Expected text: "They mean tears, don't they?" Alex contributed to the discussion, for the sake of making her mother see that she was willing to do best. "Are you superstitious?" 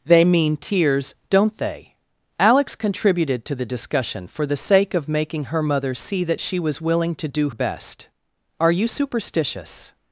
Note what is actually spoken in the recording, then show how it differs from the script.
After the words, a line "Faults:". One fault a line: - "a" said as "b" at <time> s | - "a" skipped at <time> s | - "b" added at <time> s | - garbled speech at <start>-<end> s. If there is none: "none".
"They mean tears, don't they?" Alex contributed to the discussion, for the sake of making her mother see that she was willing to do best. "Are you superstitious?"
Faults:
none